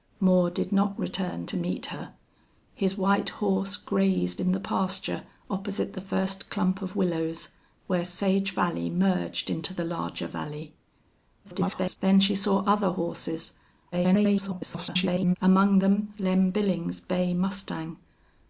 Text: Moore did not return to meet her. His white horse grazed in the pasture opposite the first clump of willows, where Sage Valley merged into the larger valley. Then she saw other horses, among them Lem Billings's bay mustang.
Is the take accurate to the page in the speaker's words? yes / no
no